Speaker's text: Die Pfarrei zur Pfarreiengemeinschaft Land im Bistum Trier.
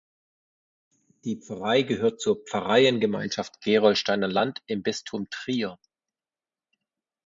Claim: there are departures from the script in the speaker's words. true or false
true